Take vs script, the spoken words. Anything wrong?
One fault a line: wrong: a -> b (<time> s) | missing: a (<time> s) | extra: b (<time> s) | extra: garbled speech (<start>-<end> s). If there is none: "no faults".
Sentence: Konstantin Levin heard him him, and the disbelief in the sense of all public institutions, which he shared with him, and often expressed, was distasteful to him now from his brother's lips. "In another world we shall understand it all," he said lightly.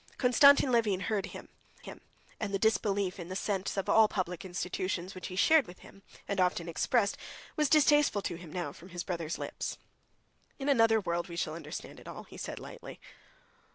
no faults